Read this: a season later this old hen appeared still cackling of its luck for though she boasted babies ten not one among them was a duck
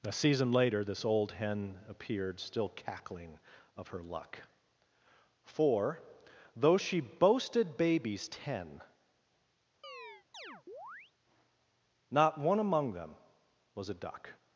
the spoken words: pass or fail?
fail